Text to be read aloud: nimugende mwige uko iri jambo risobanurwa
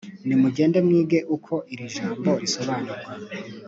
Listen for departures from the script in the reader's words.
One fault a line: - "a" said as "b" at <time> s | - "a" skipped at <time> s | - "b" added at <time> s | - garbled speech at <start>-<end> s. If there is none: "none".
none